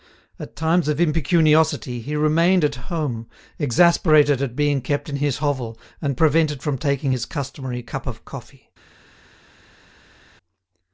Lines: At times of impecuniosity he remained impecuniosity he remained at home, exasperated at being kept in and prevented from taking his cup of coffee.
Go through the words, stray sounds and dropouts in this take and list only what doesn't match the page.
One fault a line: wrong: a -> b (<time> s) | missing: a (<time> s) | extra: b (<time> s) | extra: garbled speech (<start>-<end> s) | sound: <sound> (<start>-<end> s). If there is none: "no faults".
missing: impecuniosity he remained (2.6 s)
extra: his hovel (5.2 s)
extra: customary (7.2 s)